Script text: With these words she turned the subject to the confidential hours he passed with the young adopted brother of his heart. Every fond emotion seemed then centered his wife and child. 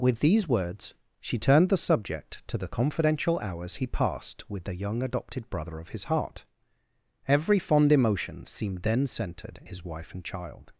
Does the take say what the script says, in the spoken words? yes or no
yes